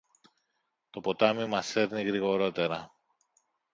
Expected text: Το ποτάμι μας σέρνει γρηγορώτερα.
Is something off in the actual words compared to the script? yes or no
no